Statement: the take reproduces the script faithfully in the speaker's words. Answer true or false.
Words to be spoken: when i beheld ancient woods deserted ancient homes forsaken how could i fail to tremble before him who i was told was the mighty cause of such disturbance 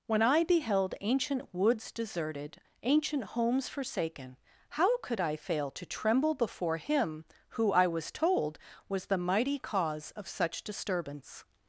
true